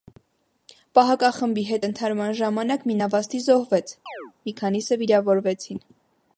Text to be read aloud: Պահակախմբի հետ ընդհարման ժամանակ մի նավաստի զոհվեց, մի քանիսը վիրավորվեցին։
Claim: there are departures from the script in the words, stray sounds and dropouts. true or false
true